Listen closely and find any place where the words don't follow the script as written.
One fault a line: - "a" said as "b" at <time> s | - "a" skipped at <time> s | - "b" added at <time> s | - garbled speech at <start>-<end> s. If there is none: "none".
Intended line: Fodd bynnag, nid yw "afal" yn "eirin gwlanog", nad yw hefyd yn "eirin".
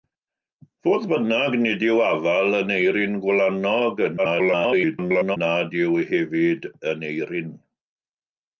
- garbled speech at 4.2-5.4 s